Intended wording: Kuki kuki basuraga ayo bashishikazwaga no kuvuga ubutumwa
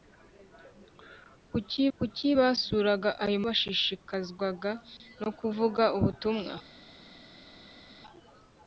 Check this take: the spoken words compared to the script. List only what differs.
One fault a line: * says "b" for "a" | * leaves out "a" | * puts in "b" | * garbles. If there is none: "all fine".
all fine